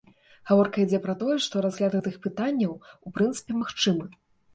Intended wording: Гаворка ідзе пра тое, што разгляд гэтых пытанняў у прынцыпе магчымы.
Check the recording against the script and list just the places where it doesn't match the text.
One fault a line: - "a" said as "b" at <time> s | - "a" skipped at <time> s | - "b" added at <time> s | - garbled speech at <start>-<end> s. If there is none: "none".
none